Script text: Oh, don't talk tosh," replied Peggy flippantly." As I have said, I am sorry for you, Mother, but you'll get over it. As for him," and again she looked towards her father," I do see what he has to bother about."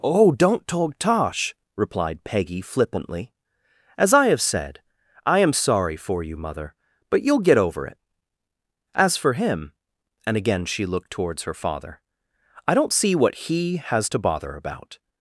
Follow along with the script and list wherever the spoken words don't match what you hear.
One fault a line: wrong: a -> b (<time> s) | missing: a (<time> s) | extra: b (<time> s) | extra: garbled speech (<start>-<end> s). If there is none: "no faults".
wrong: do -> don't (12.8 s)